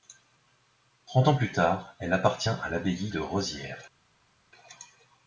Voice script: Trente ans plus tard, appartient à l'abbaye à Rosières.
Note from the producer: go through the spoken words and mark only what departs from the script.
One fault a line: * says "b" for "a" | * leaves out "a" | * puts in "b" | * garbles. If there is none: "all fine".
* puts in "elle"
* says "de" for "à"